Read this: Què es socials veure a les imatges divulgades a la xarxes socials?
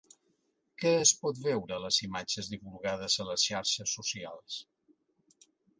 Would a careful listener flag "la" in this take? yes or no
yes